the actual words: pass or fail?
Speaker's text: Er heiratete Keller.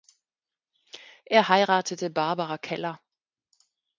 fail